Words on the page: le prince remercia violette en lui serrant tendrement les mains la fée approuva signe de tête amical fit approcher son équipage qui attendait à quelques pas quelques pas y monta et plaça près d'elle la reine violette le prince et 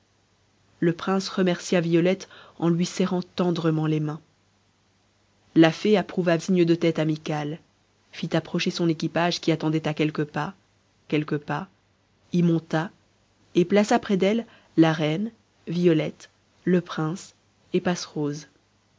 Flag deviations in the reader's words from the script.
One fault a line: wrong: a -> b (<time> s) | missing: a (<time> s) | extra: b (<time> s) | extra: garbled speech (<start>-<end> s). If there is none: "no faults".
no faults